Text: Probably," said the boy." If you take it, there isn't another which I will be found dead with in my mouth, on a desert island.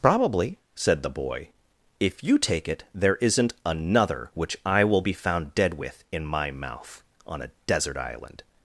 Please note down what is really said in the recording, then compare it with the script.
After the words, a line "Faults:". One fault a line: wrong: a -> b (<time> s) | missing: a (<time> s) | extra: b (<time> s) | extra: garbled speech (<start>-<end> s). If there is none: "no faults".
Probably," said the boy." If you take it, there isn't another which I will be found dead with in my mouth, on a desert island.
Faults:
no faults